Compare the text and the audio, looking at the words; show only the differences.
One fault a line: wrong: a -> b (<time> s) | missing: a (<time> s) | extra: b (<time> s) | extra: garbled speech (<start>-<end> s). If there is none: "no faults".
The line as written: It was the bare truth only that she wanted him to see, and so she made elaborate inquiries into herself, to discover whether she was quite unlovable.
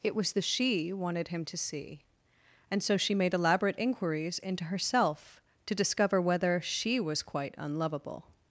missing: bare truth only that (0.4 s)